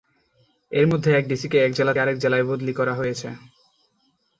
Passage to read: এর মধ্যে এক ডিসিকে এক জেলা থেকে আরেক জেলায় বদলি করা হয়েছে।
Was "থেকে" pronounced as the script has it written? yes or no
no